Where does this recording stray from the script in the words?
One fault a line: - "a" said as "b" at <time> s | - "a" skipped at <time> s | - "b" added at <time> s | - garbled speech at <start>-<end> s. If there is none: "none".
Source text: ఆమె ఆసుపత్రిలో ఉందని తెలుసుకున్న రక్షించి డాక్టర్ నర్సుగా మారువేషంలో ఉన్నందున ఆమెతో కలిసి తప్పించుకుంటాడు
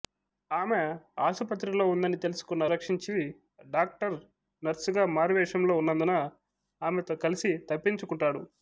none